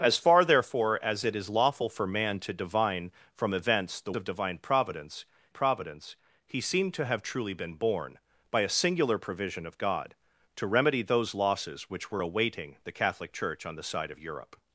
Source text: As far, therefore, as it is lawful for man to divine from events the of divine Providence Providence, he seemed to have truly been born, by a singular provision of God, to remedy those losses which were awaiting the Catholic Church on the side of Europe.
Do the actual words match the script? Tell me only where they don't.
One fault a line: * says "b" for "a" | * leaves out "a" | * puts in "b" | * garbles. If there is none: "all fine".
all fine